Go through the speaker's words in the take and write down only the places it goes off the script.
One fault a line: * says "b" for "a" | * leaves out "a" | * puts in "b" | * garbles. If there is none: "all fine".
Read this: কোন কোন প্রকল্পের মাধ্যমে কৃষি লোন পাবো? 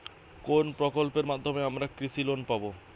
* leaves out "কোন"
* puts in "আমরা"